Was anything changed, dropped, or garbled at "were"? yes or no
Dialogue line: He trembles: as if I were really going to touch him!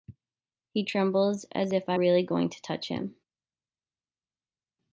yes